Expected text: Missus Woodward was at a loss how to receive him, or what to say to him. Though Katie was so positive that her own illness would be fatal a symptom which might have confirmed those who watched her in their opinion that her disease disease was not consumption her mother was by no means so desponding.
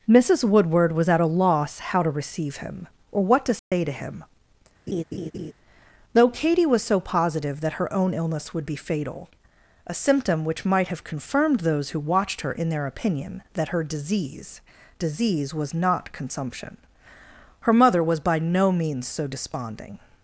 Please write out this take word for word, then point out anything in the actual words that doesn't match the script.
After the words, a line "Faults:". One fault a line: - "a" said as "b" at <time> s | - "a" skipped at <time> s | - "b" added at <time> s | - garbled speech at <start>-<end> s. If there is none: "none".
Missus Woodward was at a loss how to receive him, or what to say to him. Though Katie was so positive that her own illness would be fatal a symptom which might have confirmed those who watched her in their opinion that her disease disease was not consumption her mother was by no means so desponding.
Faults:
none